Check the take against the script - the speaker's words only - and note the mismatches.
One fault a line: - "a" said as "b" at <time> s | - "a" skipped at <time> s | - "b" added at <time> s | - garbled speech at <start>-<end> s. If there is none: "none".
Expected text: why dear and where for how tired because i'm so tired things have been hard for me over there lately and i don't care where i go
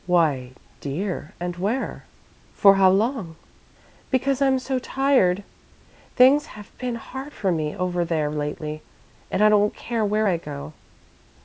- "tired" said as "long" at 2.9 s